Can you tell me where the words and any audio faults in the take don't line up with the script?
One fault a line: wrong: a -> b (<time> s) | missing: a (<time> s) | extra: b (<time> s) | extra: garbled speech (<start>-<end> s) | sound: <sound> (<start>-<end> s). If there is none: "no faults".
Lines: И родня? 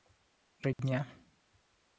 sound: dropout (0.7-0.8 s)